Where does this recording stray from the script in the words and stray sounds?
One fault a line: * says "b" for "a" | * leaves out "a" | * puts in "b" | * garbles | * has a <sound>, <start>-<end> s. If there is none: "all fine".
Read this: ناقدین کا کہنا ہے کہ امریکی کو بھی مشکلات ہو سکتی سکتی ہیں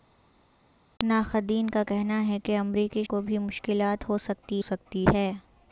all fine